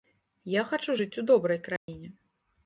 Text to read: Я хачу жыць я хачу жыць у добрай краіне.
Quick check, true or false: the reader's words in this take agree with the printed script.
false